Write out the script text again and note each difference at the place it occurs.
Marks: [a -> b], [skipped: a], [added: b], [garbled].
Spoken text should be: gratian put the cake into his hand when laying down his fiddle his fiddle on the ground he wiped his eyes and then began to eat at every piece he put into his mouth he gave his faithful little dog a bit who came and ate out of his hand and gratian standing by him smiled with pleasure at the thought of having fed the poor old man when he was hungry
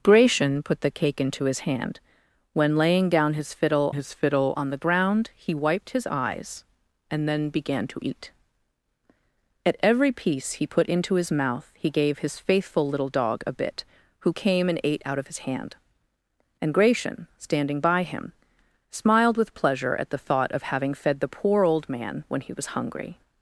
gratian put the cake into his hand when laying down his fiddle his fiddle on the ground he wiped his eyes and then began to eat at every piece he put into his mouth he gave his faithful little dog a bit who came and ate out of his hand and gratian standing by him smiled with pleasure at the thought of having fed the poor old man when he was hungry